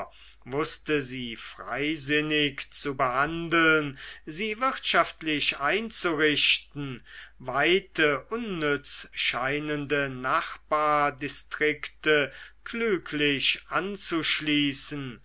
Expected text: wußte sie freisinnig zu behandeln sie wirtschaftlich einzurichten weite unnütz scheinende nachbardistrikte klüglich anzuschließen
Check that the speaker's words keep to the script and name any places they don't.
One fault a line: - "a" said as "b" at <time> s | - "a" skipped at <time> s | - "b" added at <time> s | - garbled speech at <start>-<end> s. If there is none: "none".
none